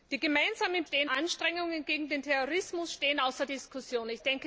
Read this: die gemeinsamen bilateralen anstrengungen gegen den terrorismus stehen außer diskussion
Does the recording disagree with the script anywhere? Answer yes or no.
yes